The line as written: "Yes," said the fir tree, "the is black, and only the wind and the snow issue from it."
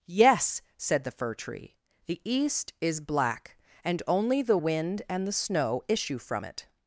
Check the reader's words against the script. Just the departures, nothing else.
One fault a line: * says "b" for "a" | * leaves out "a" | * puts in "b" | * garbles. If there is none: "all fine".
* puts in "east"